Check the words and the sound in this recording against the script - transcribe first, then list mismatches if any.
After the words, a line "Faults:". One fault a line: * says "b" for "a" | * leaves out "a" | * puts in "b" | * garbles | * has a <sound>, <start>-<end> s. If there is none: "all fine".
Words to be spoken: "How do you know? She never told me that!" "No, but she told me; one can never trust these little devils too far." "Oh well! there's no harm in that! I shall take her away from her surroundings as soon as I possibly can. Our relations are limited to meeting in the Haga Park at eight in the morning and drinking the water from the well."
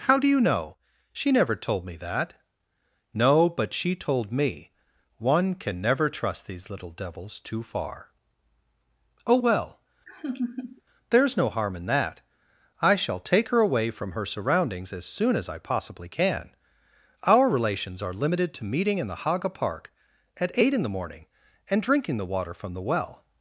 "How do you know? She never told me that!" "No, but she told me; one can never trust these little devils too far." "Oh well! there's no harm in that! I shall take her away from her surroundings as soon as I possibly can. Our relations are limited to meeting in the Haga Park at eight in the morning and drinking the water from the well."
Faults:
* has a laugh, 10.1-10.8 s